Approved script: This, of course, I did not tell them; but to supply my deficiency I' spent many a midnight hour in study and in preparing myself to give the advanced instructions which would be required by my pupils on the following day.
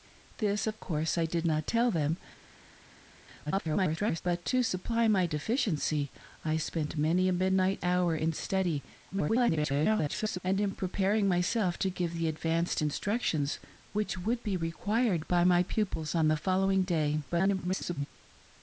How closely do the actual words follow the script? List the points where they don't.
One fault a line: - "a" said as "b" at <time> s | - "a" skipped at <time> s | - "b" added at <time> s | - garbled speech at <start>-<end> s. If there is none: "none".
- garbled speech at 3.5-4.2 s
- garbled speech at 9.1-10.4 s
- garbled speech at 17.3-18.1 s